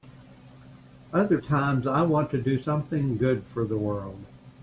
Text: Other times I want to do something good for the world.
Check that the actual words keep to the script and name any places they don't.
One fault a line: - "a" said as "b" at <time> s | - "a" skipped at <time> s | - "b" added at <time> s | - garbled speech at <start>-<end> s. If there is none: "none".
none